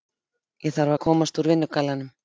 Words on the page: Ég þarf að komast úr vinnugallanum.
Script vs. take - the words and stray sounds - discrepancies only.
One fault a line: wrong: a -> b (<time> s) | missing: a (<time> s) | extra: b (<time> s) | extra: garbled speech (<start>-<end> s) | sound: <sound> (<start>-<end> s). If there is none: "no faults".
no faults